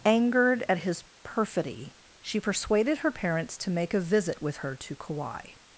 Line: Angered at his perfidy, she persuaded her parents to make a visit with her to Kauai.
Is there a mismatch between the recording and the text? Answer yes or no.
no